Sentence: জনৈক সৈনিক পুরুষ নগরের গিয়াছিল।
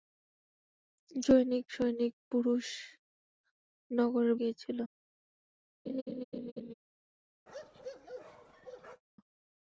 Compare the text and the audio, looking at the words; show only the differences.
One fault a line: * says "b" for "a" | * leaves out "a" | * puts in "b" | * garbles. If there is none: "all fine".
all fine